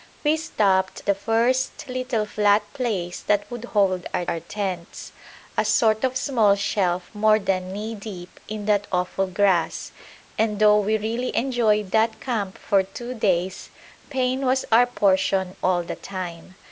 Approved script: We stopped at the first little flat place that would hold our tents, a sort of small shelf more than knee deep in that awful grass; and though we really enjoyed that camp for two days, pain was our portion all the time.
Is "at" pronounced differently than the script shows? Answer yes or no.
yes